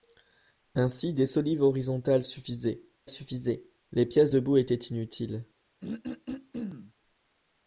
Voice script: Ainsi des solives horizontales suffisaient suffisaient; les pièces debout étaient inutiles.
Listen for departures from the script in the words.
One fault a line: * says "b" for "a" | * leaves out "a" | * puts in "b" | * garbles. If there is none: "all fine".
all fine